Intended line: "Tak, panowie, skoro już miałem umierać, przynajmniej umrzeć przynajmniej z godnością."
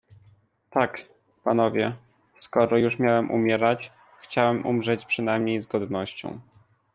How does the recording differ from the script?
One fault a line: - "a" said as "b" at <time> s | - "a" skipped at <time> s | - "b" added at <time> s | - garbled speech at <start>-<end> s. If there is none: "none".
- "przynajmniej" said as "chciałem" at 4.2 s